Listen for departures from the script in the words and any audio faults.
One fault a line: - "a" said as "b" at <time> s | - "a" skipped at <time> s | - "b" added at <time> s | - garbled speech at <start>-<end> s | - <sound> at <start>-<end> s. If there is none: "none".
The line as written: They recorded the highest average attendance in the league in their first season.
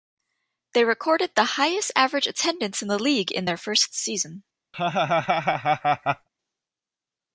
- laugh at 4.7-6.3 s